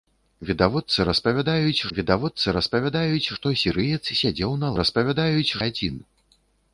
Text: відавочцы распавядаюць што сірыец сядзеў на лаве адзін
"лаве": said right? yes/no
no